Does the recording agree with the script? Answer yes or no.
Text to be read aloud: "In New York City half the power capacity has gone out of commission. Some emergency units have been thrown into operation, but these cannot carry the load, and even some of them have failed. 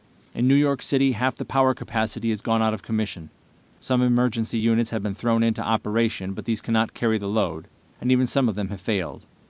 yes